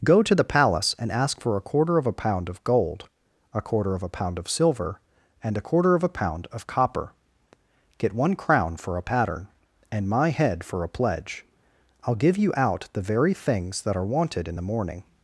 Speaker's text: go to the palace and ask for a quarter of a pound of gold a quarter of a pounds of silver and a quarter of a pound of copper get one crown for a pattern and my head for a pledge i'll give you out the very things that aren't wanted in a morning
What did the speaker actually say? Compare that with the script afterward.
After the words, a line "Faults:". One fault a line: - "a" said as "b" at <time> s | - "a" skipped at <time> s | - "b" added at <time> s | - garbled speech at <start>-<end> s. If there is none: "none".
go to the palace and ask for a quarter of a pound of gold a quarter of a pound of silver and a quarter of a pound of copper get one crown for a pattern and my head for a pledge i'll give you out the very things that are wanted in the morning
Faults:
- "pounds" said as "pound" at 4.1 s
- "aren't" said as "are" at 13.9 s
- "a" said as "the" at 14.6 s